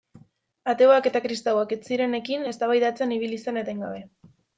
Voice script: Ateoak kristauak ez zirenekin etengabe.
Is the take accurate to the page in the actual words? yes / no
no